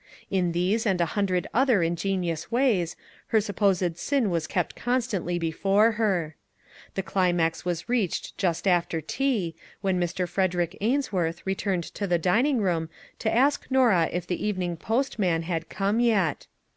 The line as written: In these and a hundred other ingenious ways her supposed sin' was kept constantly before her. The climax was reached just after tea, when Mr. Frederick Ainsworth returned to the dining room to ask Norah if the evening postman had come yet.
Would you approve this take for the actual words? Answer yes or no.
yes